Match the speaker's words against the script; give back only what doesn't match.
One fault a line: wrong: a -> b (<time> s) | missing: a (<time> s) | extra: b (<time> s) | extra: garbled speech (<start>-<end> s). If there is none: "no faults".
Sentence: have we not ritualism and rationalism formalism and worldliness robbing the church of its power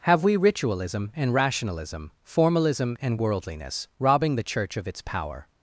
missing: not (0.3 s)